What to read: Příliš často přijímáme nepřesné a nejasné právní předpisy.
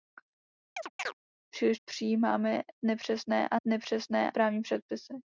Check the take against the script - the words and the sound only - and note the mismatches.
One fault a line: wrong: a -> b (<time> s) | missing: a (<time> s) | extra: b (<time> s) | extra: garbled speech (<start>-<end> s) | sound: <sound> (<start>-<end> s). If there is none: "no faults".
sound: chirp (0.8-1.1 s)
missing: často (1.8 s)
wrong: nejasné -> nepřesné (3.7 s)